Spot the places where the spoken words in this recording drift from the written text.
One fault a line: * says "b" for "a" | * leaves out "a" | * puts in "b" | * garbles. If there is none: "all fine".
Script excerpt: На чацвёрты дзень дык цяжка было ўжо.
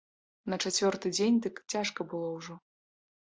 all fine